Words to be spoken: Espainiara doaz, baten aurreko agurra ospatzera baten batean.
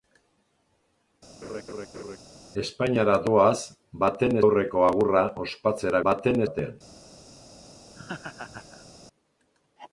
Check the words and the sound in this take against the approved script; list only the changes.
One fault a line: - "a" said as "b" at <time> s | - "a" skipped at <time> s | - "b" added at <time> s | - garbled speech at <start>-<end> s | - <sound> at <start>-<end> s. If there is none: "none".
- laugh at 1.4-2.2 s
- laugh at 7.9-8.9 s